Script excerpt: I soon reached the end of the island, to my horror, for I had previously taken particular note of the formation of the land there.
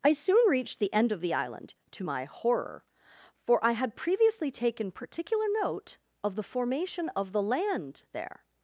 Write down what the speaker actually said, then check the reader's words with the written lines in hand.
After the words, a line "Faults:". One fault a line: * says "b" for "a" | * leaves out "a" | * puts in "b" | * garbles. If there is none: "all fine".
I soon reached the end of the island, to my horror, for I had previously taken particular note of the formation of the land there.
Faults:
all fine